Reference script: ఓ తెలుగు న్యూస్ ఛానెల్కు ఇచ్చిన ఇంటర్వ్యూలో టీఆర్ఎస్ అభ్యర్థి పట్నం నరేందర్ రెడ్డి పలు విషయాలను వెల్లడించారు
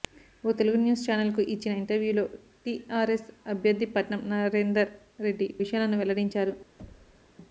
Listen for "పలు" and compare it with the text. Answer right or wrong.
wrong